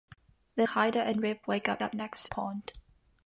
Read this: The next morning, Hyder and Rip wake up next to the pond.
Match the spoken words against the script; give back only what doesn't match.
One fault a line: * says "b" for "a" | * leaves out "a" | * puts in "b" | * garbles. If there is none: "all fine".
* leaves out "next morning"
* puts in "up"
* leaves out "the"